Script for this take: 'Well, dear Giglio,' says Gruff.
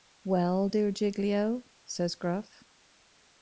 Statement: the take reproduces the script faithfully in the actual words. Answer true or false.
true